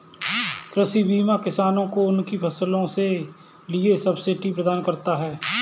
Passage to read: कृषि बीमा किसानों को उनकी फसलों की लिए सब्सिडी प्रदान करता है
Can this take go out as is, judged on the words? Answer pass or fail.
fail